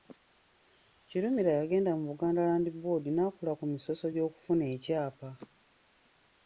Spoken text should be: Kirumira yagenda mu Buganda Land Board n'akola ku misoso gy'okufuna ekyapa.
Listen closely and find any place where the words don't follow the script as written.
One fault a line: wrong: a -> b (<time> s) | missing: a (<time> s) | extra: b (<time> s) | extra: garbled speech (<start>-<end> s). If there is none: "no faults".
no faults